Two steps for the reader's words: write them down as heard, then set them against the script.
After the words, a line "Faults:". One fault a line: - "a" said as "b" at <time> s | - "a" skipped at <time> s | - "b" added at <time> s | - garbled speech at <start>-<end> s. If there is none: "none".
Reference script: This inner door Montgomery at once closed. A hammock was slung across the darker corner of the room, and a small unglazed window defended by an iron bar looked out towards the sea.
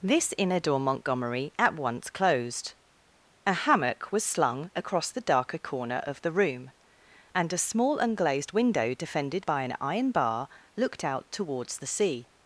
This inner door Montgomery at once closed. A hammock was slung across the darker corner of the room, and a small unglazed window defended by an iron bar looked out towards the sea.
Faults:
none